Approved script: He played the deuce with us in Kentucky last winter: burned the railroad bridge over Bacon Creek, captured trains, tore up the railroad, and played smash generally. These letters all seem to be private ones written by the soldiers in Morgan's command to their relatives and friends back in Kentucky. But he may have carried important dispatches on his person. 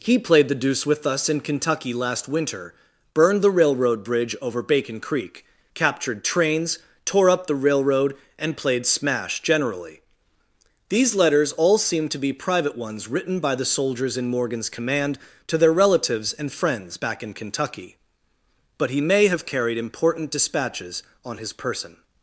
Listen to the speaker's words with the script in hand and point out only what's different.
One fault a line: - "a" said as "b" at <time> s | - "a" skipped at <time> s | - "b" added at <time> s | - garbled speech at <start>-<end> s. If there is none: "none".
none